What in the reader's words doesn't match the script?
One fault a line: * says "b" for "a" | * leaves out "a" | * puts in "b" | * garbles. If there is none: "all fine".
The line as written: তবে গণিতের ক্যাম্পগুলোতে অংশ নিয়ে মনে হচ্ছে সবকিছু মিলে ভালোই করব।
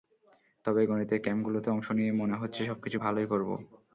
* leaves out "মিলে"